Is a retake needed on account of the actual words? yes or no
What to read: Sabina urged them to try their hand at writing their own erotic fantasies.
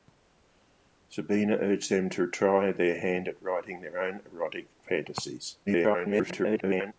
yes